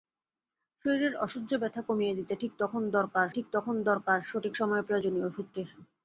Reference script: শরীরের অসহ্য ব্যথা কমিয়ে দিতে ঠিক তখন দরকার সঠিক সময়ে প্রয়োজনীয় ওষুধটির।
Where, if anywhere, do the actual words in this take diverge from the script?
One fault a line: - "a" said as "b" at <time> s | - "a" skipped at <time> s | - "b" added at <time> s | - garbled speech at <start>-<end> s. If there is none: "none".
- "ঠিক তখন দরকার" added at 3.3 s